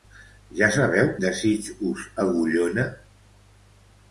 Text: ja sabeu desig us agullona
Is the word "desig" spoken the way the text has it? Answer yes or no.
yes